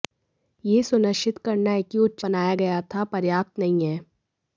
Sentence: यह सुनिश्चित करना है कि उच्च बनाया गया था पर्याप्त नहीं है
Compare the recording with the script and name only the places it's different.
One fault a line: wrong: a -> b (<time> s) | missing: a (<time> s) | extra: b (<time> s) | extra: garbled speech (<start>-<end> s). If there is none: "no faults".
no faults